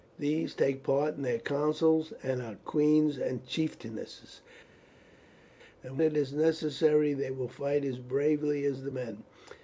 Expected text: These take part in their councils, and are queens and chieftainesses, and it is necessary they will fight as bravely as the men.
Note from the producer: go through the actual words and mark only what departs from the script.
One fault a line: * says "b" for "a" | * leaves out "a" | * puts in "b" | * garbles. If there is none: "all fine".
all fine